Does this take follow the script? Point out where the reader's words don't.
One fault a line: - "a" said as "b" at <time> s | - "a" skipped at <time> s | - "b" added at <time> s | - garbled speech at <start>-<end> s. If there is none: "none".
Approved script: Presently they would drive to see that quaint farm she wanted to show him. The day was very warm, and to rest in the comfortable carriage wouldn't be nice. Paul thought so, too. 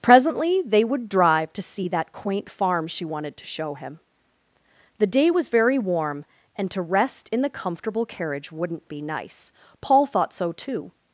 none